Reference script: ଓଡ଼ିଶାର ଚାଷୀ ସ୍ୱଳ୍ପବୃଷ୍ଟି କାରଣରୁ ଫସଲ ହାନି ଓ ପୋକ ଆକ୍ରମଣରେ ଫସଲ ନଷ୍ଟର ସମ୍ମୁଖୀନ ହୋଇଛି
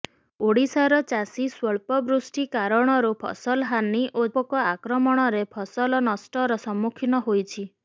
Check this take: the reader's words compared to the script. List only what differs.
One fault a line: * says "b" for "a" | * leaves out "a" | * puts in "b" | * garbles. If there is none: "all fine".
all fine